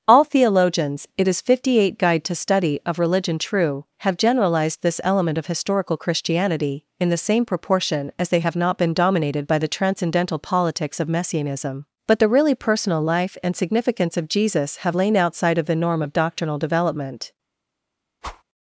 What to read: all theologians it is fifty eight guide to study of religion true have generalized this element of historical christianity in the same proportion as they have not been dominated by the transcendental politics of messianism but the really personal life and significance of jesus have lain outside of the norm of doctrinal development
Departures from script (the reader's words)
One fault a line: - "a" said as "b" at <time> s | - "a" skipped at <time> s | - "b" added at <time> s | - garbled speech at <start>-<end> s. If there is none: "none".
none